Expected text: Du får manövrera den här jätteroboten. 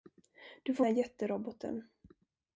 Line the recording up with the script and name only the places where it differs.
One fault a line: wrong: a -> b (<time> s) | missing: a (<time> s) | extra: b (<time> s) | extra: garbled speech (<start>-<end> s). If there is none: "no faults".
missing: manövrera den (0.9 s)